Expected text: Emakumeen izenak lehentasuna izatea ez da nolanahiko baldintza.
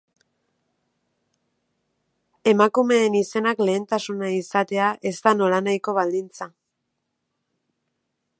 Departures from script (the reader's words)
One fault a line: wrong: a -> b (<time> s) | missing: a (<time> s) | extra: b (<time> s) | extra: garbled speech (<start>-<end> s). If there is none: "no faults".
no faults